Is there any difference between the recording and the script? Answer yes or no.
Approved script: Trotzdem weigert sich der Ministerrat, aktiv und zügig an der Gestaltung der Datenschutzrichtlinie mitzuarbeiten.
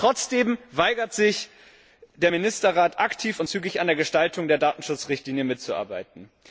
no